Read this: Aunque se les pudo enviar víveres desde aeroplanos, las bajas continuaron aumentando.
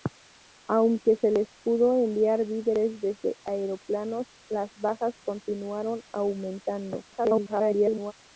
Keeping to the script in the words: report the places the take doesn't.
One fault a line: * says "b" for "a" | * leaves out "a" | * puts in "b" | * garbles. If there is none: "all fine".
* garbles